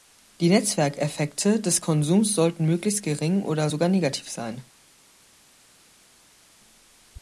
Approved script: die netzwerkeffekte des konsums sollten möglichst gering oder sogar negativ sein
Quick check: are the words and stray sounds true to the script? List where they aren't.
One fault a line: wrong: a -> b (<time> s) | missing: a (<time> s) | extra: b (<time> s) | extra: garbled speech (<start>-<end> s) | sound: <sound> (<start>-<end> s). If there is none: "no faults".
no faults